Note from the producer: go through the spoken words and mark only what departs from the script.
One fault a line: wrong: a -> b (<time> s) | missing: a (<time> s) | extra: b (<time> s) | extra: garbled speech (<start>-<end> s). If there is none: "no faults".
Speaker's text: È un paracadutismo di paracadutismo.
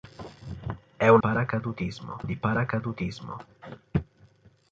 no faults